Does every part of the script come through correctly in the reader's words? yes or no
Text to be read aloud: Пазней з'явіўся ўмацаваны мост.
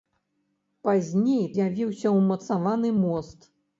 yes